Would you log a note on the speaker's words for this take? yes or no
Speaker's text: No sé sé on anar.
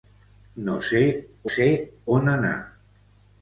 no